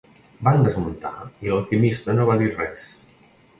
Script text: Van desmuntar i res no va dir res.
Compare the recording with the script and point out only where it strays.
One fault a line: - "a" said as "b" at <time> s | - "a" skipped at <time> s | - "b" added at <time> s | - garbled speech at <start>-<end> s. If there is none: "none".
- "res" said as "l'alquimista" at 1.6 s